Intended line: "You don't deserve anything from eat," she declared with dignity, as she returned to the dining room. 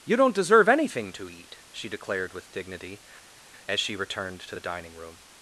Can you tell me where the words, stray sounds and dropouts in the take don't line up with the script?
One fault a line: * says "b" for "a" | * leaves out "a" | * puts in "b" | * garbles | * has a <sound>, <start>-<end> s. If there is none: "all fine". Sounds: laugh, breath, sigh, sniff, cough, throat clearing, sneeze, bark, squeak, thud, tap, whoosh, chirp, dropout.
* says "to" for "from"